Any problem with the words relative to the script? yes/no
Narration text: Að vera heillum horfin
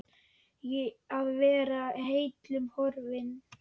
no